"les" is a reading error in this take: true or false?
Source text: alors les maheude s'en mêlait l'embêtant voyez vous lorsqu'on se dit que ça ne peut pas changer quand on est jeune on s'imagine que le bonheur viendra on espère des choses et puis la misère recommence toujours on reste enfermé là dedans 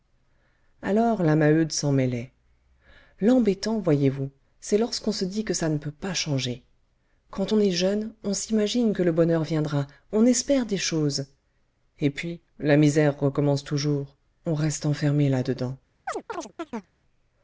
true